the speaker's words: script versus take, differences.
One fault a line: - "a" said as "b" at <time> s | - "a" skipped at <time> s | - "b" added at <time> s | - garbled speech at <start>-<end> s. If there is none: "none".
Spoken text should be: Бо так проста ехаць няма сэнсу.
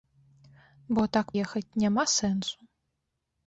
- "проста" skipped at 1.3 s